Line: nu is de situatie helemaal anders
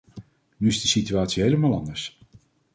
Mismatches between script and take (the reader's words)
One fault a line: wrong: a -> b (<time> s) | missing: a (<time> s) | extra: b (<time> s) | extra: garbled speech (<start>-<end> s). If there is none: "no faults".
no faults